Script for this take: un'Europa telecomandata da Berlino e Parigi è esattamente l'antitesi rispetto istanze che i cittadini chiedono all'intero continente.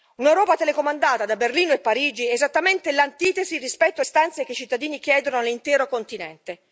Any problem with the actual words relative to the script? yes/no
no